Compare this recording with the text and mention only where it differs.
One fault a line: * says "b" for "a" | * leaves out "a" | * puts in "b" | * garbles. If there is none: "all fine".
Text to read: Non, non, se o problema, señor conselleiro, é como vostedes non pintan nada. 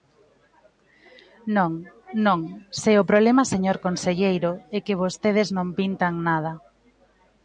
* says "que" for "como"